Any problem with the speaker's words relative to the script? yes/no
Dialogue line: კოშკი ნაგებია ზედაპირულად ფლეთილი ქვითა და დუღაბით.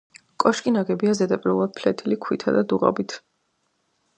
no